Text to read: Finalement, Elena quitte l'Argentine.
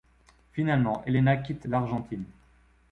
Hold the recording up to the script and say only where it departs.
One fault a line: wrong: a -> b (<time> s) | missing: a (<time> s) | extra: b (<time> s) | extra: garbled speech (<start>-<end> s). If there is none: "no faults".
no faults